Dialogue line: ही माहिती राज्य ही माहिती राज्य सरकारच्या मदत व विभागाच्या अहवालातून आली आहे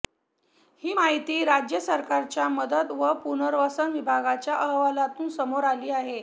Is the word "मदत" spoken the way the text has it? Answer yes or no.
yes